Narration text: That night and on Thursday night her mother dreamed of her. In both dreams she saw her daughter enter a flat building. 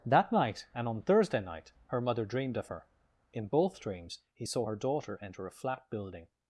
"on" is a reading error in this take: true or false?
false